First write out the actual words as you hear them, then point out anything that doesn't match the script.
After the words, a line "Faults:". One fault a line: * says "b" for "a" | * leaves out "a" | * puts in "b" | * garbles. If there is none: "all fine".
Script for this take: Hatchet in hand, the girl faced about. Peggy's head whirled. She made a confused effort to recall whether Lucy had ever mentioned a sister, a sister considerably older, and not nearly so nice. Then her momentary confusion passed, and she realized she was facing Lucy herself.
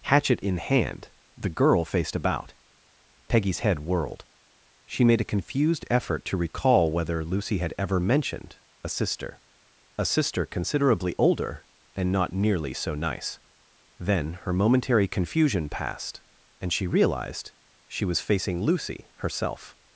Hatchet in hand, the girl faced about. Peggy's head whirled. She made a confused effort to recall whether Lucy had ever mentioned a sister, a sister considerably older, and not nearly so nice. Then her momentary confusion passed, and she realized she was facing Lucy herself.
Faults:
all fine